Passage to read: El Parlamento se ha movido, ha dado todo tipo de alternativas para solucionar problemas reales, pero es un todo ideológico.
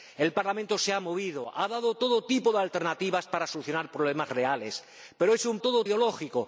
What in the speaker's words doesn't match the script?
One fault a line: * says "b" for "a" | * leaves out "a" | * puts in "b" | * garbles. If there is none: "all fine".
all fine